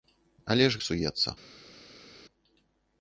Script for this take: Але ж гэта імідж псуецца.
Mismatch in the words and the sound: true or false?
true